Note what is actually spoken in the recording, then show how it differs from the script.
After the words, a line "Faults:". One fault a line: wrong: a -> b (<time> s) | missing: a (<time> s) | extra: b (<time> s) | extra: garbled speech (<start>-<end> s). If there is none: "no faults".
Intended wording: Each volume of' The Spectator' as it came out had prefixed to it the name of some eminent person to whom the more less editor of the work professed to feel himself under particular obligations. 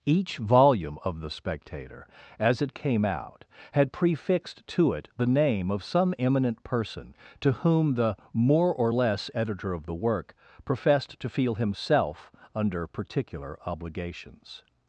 Each volume of' The Spectator' as it came out had prefixed to it the name of some eminent person to whom the more or less editor of the work professed to feel himself under particular obligations.
Faults:
extra: or (8.7 s)